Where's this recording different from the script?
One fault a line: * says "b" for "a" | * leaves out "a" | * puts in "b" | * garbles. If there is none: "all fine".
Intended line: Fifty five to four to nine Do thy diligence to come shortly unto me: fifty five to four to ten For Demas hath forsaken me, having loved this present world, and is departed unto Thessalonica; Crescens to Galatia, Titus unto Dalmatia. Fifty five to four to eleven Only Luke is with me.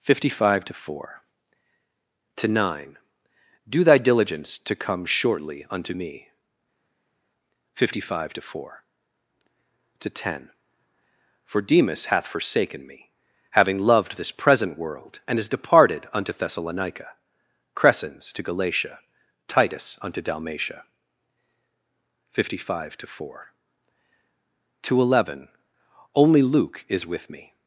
all fine